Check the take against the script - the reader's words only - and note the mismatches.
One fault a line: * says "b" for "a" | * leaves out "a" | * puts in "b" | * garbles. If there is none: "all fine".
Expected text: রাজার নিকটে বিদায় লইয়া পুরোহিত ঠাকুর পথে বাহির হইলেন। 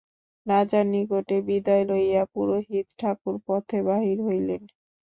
all fine